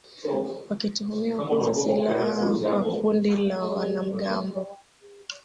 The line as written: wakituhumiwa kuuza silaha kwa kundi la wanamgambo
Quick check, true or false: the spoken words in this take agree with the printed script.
true